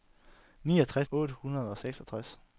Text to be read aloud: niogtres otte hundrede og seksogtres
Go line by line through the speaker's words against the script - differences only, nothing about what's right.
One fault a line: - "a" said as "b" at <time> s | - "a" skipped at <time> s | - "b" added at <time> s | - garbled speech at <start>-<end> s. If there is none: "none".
none